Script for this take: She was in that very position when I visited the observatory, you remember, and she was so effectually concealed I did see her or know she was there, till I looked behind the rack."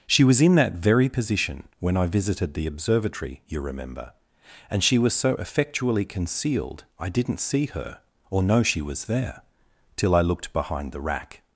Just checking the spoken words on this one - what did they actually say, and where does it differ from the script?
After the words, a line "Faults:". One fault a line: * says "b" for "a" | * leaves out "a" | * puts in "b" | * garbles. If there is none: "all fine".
She was in that very position when I visited the observatory, you remember, and she was so effectually concealed I didn't see her or know she was there, till I looked behind the rack."
Faults:
* says "didn't" for "did"